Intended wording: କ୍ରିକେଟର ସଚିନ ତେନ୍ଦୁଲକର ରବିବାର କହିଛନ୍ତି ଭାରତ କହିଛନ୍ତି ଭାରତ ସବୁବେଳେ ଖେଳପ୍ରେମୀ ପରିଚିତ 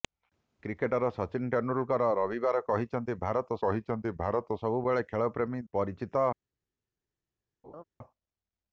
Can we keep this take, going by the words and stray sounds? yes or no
no